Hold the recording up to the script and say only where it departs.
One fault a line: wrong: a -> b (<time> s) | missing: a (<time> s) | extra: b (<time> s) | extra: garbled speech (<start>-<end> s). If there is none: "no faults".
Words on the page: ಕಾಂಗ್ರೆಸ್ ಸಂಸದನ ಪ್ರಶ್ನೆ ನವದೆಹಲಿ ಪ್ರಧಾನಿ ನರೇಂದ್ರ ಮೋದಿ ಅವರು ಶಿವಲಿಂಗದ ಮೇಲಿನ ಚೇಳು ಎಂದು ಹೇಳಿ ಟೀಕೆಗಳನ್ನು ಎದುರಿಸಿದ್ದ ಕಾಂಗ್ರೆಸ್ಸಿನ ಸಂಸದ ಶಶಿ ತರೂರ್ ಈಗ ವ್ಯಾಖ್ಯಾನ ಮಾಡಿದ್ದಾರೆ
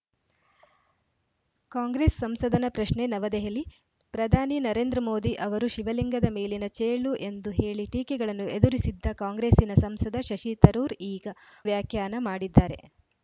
no faults